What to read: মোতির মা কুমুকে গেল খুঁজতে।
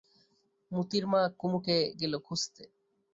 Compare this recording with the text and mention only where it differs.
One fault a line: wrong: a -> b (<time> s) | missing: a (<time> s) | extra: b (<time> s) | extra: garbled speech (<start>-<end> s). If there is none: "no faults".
no faults